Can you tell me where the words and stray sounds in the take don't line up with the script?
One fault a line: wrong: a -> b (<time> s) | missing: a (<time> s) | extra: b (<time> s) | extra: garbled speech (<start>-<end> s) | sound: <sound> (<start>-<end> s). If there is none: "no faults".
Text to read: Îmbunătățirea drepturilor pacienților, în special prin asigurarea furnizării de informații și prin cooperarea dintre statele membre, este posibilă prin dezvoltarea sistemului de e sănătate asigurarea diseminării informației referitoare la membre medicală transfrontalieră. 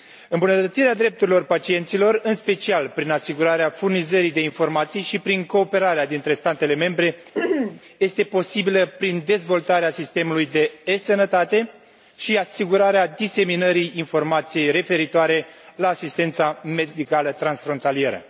sound: throat clearing (7.3-7.8 s)
extra: și (12.2 s)
wrong: membre -> asistența (15.9 s)